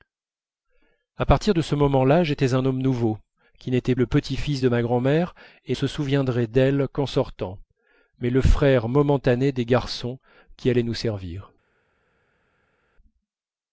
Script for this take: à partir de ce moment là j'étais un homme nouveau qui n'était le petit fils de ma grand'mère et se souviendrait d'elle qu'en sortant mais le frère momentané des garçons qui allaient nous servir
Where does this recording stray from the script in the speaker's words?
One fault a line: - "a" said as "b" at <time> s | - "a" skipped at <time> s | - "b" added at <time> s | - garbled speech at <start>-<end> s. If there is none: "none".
none